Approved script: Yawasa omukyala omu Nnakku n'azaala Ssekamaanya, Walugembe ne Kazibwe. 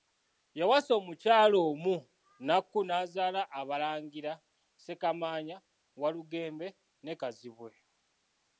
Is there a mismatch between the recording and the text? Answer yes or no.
yes